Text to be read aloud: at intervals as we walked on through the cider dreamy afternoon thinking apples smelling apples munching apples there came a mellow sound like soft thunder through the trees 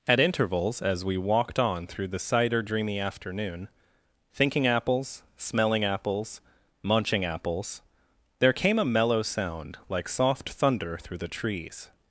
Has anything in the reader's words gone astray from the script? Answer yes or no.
no